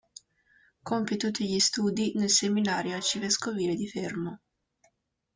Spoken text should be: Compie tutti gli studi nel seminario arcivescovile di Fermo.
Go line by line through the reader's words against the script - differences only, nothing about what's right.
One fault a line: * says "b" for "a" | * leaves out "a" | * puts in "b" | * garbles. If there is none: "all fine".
all fine